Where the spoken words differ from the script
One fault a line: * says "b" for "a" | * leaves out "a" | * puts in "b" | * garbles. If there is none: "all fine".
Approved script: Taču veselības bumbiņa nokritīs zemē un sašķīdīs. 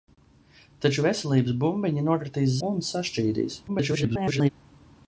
* leaves out "zemē"
* garbles